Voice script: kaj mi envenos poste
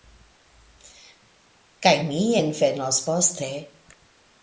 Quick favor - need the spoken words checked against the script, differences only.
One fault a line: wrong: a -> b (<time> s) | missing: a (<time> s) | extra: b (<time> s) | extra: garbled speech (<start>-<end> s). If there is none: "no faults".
no faults